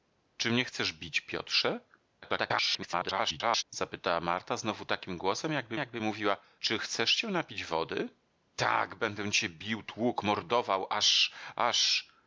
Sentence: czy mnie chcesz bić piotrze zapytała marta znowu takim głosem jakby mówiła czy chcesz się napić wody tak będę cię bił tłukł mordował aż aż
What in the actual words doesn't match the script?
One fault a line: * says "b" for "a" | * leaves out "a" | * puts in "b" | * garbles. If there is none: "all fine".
* garbles
* puts in "jakby"